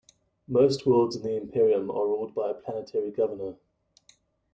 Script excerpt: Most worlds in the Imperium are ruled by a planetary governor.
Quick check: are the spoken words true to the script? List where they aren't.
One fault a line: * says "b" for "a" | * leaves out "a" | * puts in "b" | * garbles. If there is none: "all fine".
all fine